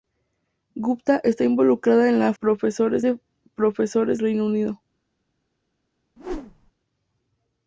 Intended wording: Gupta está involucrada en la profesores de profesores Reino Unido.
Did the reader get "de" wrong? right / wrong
right